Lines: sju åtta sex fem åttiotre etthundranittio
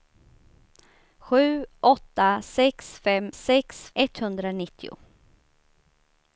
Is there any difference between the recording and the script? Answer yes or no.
yes